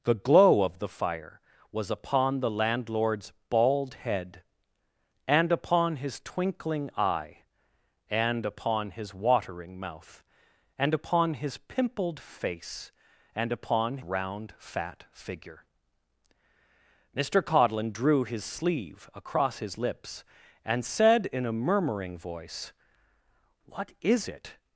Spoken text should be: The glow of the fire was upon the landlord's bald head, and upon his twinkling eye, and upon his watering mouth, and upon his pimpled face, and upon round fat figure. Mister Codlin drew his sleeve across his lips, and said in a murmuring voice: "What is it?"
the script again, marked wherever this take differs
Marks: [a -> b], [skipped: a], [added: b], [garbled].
The glow of the fire was upon the landlord's bald head, and upon his twinkling eye, and upon his watering mouth, and upon his pimpled face, and upon round fat figure. Mister Codlin drew his sleeve across his lips, and said in a murmuring voice: "What is it?"